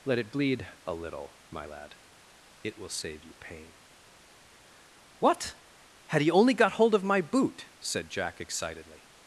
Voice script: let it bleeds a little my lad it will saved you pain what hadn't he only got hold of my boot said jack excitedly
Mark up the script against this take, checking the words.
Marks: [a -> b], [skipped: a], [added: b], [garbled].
let it [bleeds -> bleed] a little my lad it will [saved -> save] you pain what [hadn't -> had] he only got hold of my boot said jack excitedly